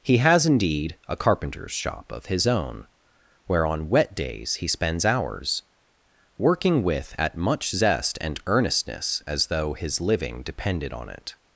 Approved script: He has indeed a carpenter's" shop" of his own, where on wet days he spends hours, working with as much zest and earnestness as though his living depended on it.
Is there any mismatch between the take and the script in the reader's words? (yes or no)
yes